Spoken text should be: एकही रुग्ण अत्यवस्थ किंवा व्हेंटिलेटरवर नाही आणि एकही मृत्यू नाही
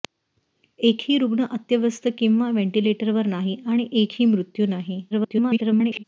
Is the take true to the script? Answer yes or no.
no